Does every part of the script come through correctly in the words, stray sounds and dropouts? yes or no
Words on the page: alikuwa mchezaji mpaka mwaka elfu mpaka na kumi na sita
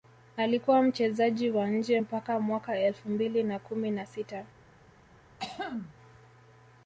no